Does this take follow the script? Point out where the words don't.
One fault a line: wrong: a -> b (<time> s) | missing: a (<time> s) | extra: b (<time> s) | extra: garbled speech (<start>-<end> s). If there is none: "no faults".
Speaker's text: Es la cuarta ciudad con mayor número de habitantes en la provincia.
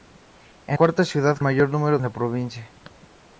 missing: la (0.8 s)
missing: con (1.4 s)
missing: de habitantes en (2.0 s)